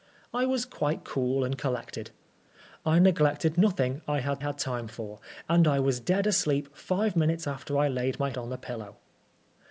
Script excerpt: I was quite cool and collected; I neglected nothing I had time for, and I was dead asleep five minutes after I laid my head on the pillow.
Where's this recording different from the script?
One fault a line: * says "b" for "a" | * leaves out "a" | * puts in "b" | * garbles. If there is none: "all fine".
* puts in "had"
* leaves out "head"